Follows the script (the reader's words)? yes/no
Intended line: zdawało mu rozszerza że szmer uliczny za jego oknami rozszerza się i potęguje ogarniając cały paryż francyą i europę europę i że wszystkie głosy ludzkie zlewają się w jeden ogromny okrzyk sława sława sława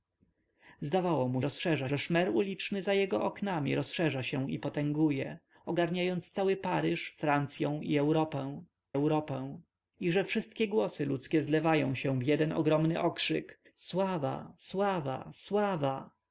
yes